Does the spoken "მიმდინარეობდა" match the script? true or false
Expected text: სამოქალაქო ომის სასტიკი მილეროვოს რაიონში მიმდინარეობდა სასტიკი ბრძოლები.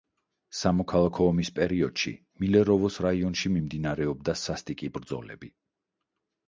true